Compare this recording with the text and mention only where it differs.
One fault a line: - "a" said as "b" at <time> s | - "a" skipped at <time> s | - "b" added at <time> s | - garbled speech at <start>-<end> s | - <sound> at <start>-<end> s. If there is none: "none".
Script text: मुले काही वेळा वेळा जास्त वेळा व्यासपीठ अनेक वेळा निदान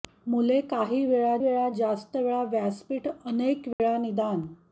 - dropout at 3.7-3.8 s